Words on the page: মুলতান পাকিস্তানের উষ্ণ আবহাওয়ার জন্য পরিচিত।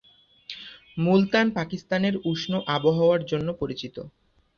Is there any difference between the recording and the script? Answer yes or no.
no